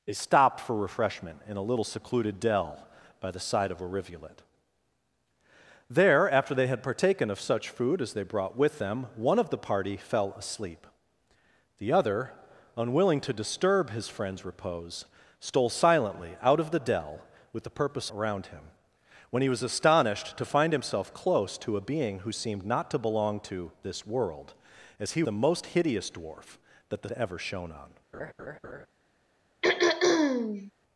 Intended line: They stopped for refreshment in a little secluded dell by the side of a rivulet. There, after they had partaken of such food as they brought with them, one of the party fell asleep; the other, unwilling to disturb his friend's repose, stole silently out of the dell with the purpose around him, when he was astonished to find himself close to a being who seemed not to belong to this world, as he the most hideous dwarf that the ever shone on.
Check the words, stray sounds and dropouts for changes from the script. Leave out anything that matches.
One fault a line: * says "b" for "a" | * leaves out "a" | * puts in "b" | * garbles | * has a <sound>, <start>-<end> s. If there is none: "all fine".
* has a laugh, 28.1-28.9 s
* has a throat clearing, 29.6-30.7 s